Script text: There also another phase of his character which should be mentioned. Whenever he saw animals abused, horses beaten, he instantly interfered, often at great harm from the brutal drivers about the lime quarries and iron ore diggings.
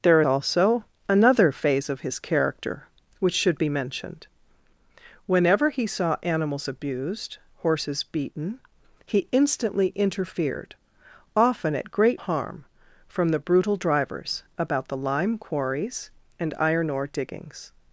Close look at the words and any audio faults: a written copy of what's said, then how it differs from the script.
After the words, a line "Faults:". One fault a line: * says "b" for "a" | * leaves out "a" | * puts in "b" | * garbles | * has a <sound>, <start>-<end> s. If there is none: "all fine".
There also another phase of his character which should be mentioned. Whenever he saw animals abused, horses beaten, he instantly interfered, often at great harm from the brutal drivers about the lime quarries and iron ore diggings.
Faults:
all fine